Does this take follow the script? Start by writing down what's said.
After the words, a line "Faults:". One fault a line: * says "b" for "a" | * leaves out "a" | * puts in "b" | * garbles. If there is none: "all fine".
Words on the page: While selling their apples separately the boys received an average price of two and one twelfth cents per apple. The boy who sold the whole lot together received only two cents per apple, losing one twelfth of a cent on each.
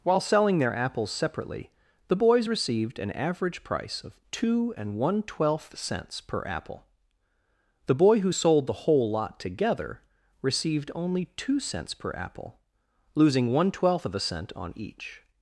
While selling their apples separately the boys received an average price of two and one twelfth cents per apple. The boy who sold the whole lot together received only two cents per apple, losing one twelfth of a cent on each.
Faults:
all fine